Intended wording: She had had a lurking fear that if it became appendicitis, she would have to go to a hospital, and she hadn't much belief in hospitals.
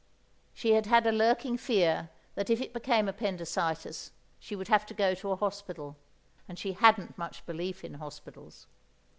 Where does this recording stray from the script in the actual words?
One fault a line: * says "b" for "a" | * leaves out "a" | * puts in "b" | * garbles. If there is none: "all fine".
all fine